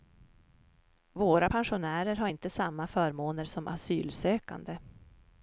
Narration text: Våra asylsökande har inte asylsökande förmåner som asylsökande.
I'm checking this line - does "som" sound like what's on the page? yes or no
yes